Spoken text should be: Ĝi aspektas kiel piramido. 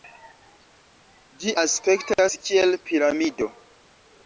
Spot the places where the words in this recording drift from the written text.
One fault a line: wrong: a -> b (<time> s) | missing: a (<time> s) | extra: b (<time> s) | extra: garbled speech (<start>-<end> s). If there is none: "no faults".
no faults